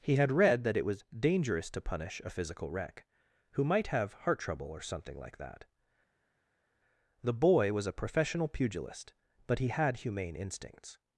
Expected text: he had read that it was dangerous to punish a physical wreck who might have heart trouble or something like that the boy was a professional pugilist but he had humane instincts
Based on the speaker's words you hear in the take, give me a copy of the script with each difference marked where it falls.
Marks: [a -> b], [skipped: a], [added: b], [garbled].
he had read that it was dangerous to punish a physical wreck who might have heart trouble or something like that the boy was a professional pugilist but he had humane instincts